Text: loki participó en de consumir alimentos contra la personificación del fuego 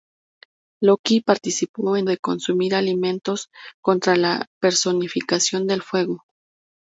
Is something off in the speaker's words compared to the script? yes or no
no